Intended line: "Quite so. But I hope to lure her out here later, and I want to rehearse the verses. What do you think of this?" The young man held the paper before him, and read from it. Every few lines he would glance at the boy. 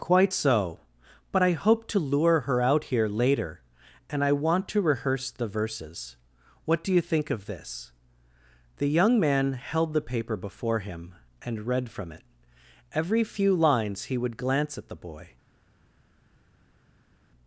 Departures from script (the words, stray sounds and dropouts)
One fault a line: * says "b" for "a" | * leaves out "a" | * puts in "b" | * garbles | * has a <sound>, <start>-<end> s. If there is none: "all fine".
all fine